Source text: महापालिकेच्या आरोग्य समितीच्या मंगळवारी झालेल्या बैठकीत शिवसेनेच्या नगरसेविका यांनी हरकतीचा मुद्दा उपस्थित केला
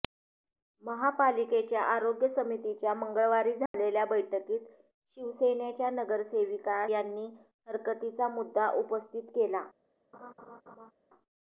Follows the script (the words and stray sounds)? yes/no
no